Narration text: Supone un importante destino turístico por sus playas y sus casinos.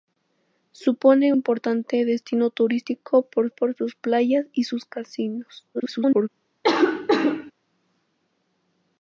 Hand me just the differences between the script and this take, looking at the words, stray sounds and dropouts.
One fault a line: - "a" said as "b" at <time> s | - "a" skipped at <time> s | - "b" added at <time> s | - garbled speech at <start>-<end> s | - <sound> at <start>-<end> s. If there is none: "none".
- "un" skipped at 1.3 s
- "por" added at 3.5 s
- garbled speech at 5.7-6.3 s
- cough at 6.6-7.5 s